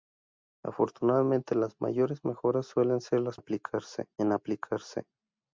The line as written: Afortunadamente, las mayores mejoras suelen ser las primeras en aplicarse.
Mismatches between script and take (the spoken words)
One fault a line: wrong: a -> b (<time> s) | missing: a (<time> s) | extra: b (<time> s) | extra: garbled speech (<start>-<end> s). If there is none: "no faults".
wrong: primeras -> aplicarse (3.3 s)